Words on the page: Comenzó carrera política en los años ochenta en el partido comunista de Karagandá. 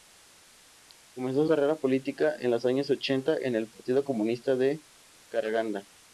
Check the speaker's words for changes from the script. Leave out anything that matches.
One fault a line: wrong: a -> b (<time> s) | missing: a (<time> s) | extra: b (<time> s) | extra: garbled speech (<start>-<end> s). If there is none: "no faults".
no faults